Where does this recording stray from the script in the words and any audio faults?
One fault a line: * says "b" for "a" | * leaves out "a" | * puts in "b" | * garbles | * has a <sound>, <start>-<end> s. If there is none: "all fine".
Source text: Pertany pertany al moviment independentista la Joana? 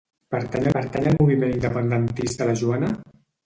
all fine